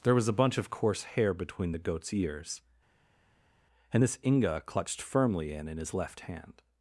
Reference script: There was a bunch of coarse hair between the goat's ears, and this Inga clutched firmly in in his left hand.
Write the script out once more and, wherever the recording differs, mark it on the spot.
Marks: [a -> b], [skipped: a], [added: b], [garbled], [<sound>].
There was a bunch of coarse hair between the goat's ears, and this Inga clutched firmly in in his left hand.